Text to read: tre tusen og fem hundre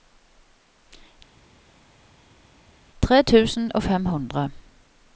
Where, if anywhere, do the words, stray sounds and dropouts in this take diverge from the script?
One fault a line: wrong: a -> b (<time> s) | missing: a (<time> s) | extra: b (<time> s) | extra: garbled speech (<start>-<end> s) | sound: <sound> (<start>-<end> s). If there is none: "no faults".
no faults